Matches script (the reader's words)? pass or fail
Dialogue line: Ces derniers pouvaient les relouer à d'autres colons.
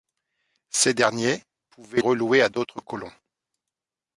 fail